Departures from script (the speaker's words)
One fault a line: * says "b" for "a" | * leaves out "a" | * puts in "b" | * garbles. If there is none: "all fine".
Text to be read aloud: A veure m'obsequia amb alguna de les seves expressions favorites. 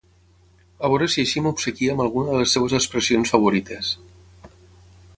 * puts in "si així"